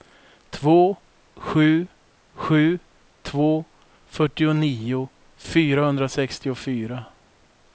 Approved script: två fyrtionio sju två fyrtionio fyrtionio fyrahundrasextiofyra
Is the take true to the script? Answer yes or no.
no